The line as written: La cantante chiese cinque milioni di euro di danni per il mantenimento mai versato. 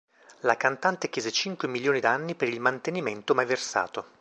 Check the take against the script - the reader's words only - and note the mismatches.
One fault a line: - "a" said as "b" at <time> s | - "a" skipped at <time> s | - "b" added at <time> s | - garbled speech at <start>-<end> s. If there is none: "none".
- "di euro di" skipped at 2.0 s